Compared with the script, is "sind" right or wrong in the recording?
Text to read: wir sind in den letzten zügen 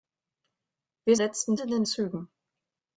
wrong